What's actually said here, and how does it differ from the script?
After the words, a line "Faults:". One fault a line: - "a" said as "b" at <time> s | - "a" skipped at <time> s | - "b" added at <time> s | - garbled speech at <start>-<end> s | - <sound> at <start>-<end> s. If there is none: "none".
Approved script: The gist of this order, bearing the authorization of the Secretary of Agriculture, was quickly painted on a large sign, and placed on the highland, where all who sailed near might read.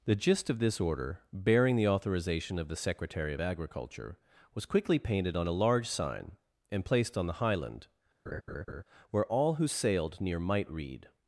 The gist of this order, bearing the authorization of the Secretary of Agriculture, was quickly painted on a large sign, and placed on the highland, where all who sailed near might read.
Faults:
- laugh at 8.3-8.8 s